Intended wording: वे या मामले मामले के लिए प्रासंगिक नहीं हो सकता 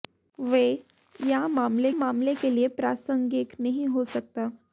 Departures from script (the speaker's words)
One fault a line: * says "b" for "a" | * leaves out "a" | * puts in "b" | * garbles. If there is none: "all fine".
all fine